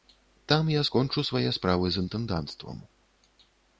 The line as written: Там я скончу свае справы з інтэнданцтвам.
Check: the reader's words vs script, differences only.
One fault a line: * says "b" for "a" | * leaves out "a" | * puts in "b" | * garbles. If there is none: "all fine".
all fine